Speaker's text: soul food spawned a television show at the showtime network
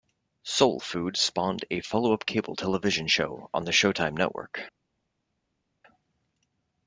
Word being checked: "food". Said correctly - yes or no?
yes